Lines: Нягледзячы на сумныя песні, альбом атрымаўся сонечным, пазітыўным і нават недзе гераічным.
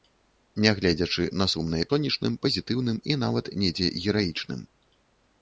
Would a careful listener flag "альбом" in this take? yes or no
yes